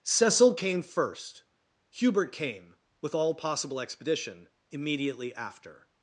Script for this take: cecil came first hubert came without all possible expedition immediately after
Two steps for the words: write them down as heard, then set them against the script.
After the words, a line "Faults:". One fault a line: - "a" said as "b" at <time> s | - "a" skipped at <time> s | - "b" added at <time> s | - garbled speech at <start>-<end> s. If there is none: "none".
cecil came first hubert came with all possible expedition immediately after
Faults:
- "without" said as "with" at 3.0 s